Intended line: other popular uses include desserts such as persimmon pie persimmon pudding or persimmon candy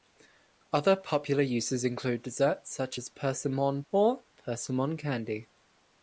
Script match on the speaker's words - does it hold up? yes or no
no